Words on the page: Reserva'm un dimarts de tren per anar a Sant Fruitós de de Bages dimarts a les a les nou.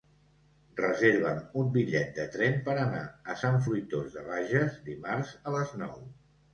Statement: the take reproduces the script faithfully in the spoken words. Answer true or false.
false